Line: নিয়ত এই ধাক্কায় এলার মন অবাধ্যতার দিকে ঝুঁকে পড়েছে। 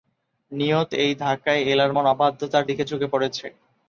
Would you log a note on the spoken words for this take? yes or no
no